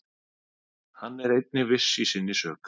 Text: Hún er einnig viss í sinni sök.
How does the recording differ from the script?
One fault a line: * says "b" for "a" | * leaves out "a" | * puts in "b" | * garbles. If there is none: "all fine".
* says "Hann" for "Hún"